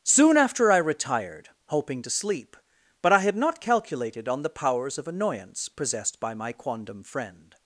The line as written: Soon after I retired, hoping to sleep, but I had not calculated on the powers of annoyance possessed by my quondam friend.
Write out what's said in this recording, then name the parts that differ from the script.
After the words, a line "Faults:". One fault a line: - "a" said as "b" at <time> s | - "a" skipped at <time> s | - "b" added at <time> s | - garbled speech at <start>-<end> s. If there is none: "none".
Soon after I retired, hoping to sleep, but I had not calculated on the powers of annoyance possessed by my quondam friend.
Faults:
none